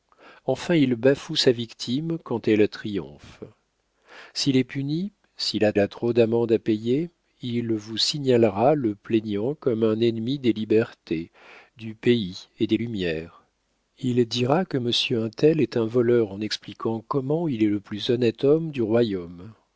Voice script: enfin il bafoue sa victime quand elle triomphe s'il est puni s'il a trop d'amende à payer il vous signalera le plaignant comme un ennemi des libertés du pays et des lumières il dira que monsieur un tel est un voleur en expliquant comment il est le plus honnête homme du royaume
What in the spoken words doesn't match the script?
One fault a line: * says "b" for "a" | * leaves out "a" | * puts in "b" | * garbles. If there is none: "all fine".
* puts in "a"